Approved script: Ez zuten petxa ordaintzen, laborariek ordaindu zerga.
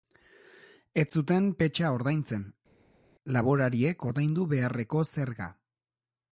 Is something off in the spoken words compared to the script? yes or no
yes